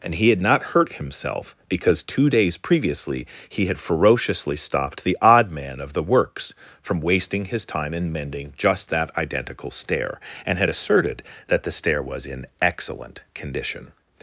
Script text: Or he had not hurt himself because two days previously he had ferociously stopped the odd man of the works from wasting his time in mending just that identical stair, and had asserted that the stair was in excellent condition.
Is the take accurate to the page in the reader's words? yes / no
no